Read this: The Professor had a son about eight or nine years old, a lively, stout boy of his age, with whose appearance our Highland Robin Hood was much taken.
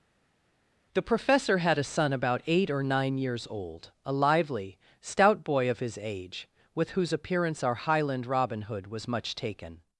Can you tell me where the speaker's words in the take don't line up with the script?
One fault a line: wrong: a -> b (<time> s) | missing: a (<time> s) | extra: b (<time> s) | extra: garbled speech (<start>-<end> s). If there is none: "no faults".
no faults